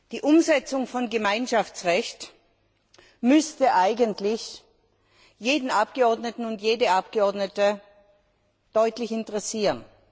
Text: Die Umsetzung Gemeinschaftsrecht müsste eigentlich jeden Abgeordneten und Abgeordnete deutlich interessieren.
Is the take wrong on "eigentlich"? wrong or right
right